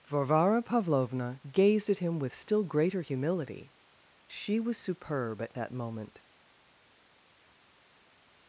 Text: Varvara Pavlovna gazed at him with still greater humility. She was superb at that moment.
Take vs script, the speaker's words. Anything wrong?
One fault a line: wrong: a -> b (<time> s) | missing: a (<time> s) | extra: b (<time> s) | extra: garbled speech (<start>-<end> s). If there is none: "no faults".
no faults